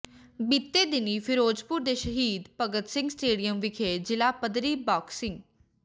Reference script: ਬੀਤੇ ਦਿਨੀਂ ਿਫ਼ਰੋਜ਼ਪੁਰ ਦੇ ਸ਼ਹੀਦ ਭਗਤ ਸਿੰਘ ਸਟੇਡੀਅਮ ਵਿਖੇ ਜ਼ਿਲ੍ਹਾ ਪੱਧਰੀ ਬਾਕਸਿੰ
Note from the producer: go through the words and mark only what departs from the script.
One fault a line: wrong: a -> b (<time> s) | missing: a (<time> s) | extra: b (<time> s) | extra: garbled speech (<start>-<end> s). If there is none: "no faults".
no faults